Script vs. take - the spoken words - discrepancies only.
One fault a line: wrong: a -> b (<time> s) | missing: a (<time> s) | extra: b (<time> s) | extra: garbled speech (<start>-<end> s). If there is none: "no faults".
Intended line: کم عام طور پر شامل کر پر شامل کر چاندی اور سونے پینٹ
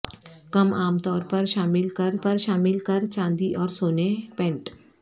no faults